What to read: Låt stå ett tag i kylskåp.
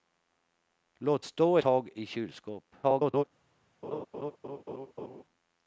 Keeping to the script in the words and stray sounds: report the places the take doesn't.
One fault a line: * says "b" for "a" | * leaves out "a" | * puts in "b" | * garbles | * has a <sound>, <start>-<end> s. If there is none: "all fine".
* leaves out "ett"
* garbles
* has a laugh, 3.8-5.2 s